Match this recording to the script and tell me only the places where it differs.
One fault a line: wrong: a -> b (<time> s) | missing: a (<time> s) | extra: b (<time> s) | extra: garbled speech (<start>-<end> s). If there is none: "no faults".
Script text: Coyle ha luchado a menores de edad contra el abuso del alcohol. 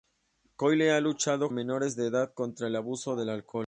no faults